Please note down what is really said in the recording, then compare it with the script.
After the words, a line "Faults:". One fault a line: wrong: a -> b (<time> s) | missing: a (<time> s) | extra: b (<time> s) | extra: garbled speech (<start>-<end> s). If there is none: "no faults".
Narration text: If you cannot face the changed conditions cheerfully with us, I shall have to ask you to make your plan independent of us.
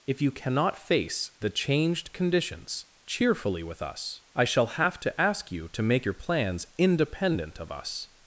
If you cannot face the changed conditions cheerfully with us, I shall have to ask you to make your plans independent of us.
Faults:
wrong: plan -> plans (6.1 s)